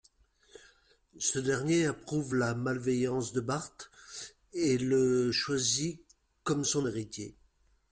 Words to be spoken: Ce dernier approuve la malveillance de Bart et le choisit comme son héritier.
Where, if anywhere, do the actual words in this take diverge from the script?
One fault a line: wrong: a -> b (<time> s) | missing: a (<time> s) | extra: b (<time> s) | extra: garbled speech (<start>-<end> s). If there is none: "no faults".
no faults